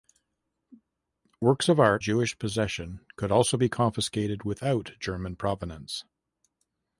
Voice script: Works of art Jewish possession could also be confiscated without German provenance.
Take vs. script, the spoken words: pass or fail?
pass